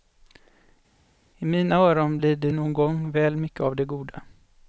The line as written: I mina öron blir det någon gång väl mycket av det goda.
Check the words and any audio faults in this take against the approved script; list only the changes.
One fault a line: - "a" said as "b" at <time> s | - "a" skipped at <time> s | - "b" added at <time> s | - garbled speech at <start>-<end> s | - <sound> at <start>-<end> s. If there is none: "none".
none